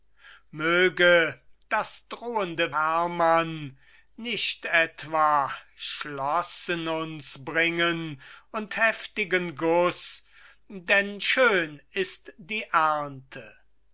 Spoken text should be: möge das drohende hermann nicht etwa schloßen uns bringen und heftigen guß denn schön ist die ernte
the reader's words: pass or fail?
pass